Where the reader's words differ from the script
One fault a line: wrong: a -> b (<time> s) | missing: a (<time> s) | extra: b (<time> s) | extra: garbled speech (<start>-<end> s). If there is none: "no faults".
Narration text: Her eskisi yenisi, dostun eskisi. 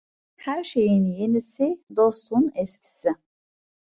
wrong: eskisi -> şeyin (0.6 s)